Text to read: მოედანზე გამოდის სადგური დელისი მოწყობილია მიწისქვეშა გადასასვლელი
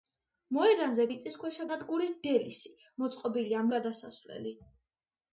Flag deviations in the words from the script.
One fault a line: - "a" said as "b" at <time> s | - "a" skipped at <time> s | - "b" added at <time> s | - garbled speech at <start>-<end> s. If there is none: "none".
- "გამოდის" said as "მიწისქვეშა" at 1.1 s
- "მიწისქვეშა" skipped at 3.6 s